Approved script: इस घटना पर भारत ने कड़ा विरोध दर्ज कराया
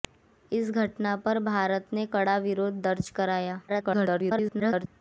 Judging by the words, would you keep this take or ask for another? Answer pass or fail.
fail